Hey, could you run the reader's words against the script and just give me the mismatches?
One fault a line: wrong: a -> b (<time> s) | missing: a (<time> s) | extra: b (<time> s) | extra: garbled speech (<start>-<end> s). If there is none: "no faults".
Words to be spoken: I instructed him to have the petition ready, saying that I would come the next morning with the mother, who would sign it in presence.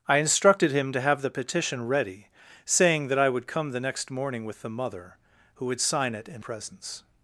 no faults